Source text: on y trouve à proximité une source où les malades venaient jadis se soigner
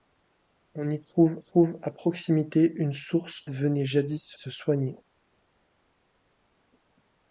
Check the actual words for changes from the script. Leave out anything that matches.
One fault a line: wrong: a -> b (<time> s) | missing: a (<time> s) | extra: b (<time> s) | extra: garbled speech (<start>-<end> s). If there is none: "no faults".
extra: trouve (1.4 s)
missing: où les malades (3.4 s)
extra: se (4.3 s)